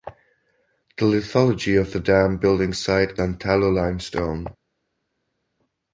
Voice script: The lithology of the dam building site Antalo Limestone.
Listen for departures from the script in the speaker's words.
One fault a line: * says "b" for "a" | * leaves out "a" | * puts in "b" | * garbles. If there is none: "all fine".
all fine